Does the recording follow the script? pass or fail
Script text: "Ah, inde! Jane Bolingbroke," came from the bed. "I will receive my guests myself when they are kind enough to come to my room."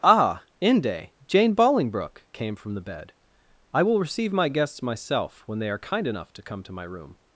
pass